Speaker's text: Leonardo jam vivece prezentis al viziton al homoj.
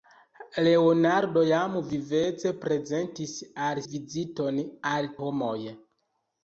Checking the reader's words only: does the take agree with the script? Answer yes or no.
yes